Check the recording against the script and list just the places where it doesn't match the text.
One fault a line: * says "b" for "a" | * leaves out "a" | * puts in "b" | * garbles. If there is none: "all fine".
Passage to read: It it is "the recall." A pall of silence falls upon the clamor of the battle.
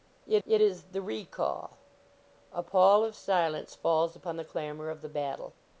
all fine